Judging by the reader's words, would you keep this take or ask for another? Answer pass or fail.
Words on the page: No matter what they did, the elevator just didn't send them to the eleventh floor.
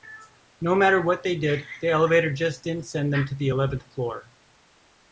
pass